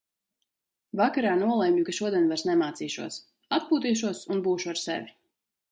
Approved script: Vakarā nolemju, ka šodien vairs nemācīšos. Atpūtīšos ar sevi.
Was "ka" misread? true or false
false